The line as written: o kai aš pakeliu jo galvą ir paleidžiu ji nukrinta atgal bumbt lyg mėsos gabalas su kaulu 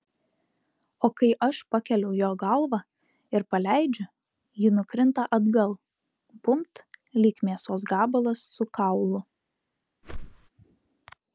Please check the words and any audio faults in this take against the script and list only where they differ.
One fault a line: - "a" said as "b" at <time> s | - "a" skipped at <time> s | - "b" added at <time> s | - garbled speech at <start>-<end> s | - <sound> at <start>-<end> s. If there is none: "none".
- whoosh at 10.0-10.5 s